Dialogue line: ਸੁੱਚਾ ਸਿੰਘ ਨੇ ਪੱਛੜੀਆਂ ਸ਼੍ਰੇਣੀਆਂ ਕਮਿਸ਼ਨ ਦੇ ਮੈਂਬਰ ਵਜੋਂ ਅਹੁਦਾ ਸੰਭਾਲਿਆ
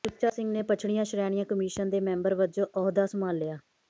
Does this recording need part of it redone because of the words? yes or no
no